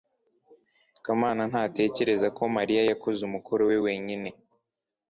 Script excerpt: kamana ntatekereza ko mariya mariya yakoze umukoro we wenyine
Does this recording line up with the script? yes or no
no